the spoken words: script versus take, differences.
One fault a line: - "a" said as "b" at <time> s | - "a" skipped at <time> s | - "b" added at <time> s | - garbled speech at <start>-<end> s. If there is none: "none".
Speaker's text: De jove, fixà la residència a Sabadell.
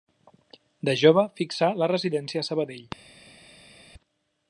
none